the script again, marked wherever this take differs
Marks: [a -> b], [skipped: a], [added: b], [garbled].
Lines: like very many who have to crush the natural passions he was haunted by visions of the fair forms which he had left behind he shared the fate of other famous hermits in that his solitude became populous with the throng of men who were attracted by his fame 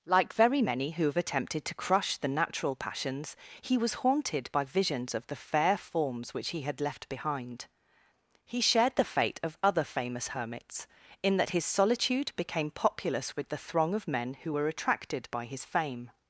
like very many who have [added: attempted] to crush the natural passions he was haunted by visions of the fair forms which he had left behind he shared the fate of other famous hermits in that his solitude became populous with the throng of men who were attracted by his fame